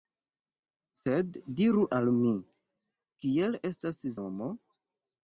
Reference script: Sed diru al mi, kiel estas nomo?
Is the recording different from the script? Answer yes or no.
no